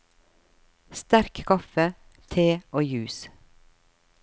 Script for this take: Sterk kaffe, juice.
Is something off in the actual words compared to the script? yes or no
yes